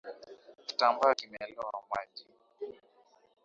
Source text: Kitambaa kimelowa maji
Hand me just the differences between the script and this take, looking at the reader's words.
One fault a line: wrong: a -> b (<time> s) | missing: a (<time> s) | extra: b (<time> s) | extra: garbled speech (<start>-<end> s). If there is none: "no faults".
no faults